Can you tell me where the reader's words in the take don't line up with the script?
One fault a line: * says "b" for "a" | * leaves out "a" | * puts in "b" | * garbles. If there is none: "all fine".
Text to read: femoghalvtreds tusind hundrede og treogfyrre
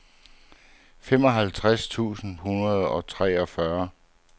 all fine